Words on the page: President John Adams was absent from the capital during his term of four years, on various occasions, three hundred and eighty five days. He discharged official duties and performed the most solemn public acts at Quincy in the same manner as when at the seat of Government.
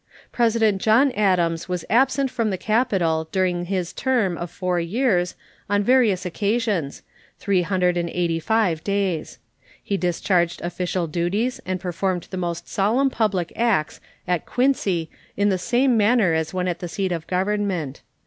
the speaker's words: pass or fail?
pass